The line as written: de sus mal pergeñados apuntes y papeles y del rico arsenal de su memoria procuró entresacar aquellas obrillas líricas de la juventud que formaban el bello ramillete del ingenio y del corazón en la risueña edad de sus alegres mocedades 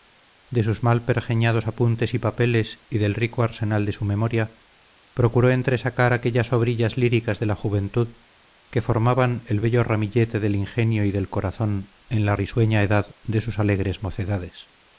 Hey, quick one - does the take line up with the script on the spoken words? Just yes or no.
yes